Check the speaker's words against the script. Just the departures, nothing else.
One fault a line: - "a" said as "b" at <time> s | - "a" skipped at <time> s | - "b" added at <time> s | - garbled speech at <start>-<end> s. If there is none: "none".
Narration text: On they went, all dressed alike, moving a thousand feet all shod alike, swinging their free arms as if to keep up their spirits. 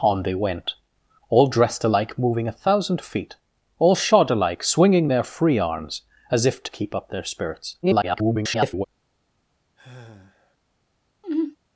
- garbled speech at 7.8-8.9 s